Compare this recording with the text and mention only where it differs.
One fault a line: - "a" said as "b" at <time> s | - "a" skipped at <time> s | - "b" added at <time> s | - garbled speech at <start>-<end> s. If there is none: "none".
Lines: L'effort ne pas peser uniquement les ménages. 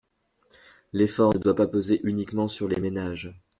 - "doit" added at 1.4 s
- "sur" added at 2.5 s